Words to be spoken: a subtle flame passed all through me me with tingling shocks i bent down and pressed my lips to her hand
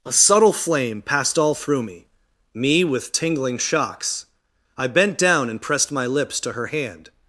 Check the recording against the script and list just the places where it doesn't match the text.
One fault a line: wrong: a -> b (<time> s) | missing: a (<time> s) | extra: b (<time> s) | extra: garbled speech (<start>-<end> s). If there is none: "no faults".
no faults